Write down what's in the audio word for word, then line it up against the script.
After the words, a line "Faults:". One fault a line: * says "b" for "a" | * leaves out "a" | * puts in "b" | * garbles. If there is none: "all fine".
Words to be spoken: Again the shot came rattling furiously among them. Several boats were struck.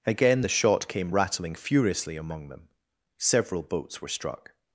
Again the shot came rattling furiously among them. Several boats were struck.
Faults:
all fine